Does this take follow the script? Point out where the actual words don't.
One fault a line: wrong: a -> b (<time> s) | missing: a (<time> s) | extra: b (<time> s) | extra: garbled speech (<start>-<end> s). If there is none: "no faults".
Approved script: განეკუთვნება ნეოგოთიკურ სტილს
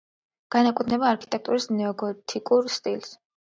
extra: არქიტექტურის (1.1 s)